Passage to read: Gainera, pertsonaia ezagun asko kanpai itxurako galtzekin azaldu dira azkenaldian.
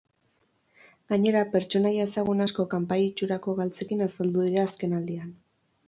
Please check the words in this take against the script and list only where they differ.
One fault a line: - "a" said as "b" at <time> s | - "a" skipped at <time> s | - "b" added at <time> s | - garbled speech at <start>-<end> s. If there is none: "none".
none